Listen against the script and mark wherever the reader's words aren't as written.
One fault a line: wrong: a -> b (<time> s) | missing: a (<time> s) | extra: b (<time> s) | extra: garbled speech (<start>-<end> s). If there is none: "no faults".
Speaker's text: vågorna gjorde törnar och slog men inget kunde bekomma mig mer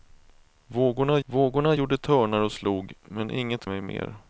extra: vågorna (1.3 s)
missing: kunde bekomma (3.7 s)